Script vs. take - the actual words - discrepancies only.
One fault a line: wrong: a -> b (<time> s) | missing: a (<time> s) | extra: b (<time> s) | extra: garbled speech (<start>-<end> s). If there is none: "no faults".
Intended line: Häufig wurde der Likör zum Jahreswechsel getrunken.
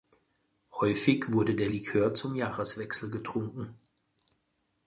no faults